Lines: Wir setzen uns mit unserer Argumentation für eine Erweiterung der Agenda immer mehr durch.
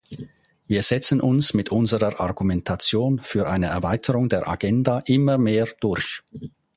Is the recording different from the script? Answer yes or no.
no